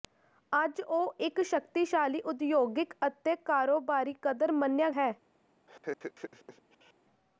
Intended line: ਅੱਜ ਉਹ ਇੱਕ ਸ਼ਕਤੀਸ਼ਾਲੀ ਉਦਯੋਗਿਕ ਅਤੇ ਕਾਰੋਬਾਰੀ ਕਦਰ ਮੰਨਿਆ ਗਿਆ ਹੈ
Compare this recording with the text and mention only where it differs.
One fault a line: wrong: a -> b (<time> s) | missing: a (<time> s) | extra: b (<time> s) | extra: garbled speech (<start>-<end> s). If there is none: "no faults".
missing: ਗਿਆ (4.9 s)